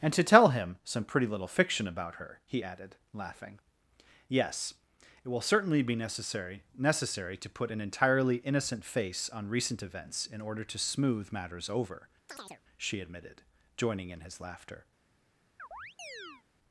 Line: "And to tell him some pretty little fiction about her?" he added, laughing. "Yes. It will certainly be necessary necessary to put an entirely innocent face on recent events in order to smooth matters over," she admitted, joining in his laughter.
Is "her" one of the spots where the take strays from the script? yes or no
no